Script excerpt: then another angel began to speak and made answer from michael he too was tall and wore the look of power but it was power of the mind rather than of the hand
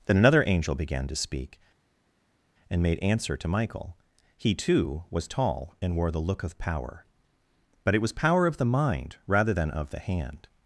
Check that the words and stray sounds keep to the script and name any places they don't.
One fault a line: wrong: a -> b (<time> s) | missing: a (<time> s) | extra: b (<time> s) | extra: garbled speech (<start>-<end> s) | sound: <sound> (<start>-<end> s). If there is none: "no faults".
wrong: from -> to (3.4 s)